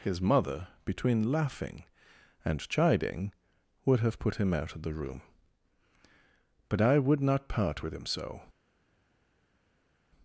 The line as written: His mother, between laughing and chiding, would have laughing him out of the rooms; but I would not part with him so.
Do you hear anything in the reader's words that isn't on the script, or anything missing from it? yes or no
yes